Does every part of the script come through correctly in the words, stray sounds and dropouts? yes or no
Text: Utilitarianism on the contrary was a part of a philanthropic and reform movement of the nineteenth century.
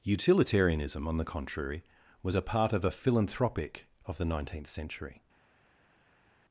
no